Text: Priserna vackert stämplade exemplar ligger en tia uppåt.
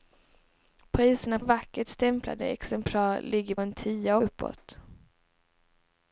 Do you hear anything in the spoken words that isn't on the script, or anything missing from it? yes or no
no